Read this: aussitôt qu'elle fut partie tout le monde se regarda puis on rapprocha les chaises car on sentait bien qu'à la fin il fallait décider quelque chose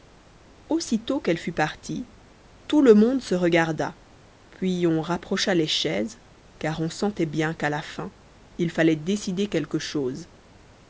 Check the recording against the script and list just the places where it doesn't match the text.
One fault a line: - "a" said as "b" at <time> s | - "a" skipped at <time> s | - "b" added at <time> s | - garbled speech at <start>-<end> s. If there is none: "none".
none